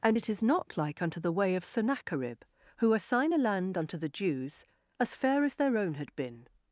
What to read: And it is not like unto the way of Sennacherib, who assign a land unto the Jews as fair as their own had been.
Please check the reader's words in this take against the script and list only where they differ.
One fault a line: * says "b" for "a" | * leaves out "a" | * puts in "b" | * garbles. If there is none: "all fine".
all fine